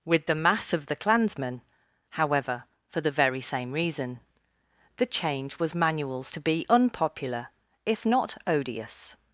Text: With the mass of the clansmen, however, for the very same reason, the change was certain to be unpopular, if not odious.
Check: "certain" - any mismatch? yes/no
yes